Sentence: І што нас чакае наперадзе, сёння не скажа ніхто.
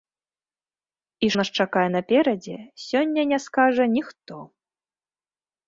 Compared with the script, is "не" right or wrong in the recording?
right